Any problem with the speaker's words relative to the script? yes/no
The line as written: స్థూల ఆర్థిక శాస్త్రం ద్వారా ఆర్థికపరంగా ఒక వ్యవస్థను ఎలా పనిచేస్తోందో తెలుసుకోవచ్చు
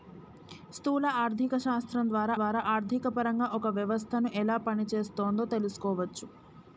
yes